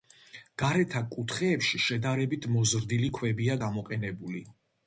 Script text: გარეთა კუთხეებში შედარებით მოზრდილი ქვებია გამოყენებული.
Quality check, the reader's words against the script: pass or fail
pass